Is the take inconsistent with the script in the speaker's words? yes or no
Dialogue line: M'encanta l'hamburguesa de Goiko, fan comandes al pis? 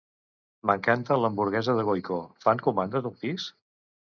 no